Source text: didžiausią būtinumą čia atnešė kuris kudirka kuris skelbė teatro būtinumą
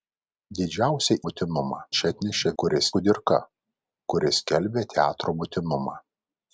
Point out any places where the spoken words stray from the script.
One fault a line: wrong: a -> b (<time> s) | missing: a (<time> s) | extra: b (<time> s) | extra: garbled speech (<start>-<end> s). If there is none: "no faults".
no faults